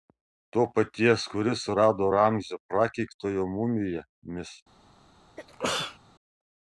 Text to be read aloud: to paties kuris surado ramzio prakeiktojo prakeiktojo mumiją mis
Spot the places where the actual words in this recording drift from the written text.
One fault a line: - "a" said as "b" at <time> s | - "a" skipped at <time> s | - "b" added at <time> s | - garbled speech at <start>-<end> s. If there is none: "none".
- "prakeiktojo" skipped at 3.5 s